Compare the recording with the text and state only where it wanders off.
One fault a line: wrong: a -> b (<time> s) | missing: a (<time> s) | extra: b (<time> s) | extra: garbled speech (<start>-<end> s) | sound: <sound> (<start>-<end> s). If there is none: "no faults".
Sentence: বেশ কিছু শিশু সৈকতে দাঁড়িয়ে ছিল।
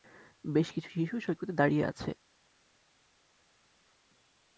wrong: ছিল -> আছে (1.8 s)